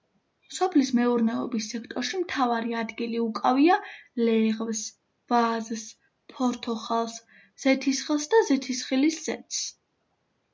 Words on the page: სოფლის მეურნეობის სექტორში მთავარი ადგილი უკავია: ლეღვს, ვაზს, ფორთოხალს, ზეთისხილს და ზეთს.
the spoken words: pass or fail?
fail